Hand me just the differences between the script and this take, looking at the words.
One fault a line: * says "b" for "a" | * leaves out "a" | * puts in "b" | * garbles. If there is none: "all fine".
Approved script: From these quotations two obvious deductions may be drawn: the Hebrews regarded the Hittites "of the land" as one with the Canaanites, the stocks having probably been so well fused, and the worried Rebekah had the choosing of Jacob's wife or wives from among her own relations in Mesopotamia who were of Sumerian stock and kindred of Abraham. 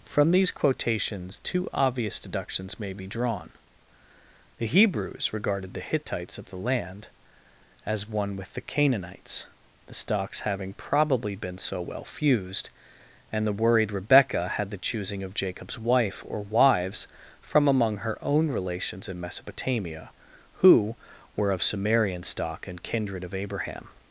all fine